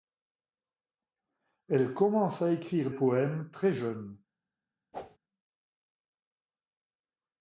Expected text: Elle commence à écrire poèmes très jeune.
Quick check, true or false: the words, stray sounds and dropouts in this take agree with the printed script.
false